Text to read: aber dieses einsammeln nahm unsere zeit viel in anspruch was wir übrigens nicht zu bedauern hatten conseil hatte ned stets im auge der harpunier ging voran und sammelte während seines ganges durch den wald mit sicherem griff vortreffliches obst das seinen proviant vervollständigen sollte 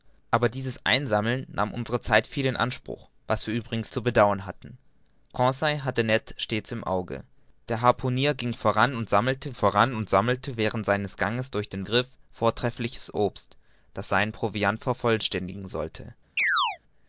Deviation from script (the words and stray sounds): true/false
true